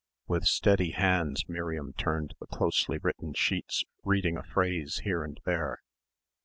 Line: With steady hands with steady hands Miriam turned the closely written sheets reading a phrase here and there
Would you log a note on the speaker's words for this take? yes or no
yes